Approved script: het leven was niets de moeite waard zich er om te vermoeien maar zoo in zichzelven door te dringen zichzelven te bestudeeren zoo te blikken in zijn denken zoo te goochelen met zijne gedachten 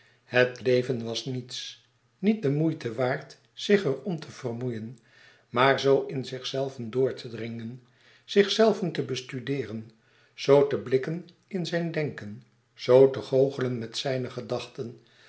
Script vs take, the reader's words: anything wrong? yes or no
yes